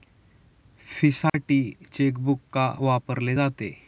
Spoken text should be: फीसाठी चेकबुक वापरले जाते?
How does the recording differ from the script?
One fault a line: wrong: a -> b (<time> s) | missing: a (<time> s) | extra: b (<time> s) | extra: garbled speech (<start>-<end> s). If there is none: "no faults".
extra: का (2.5 s)